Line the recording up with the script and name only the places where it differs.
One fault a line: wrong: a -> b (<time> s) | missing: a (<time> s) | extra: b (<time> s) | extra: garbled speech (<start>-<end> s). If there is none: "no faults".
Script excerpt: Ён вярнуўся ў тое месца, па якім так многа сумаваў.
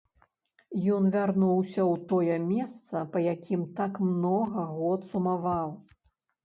extra: год (4.8 s)